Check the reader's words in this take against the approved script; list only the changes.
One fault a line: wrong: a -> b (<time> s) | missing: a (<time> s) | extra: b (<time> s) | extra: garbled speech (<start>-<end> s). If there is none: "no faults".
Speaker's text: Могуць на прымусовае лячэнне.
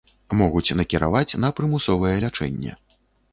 extra: накіраваць (0.8 s)